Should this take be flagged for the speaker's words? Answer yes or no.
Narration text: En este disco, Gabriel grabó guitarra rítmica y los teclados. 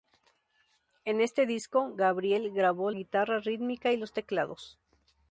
no